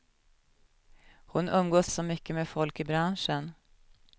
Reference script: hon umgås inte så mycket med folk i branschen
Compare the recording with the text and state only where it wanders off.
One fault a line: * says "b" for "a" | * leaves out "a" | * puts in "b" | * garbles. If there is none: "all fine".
* leaves out "inte"